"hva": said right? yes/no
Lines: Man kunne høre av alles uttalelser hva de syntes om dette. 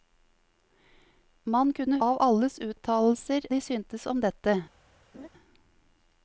no